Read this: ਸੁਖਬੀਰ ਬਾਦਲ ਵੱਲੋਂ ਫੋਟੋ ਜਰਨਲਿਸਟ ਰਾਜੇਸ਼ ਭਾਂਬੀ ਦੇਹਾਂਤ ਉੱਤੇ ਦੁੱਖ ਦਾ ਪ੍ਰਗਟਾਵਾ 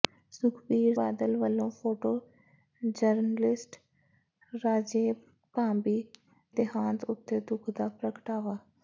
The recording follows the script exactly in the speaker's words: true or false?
true